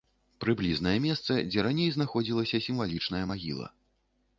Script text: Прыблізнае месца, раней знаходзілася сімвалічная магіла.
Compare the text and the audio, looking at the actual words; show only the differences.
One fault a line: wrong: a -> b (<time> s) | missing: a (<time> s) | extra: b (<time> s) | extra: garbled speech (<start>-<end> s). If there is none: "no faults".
extra: дзе (1.5 s)